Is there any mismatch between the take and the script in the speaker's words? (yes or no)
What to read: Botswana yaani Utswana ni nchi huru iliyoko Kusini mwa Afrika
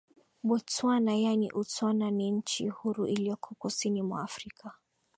no